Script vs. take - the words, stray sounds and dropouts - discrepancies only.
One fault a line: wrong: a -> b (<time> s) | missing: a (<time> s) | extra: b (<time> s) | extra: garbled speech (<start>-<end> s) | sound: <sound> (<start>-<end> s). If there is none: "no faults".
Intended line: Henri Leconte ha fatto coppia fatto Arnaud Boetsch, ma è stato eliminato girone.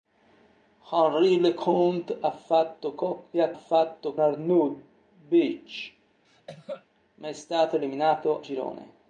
sound: cough (6.2-6.9 s)